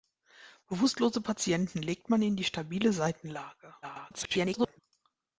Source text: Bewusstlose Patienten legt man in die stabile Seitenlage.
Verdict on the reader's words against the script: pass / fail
fail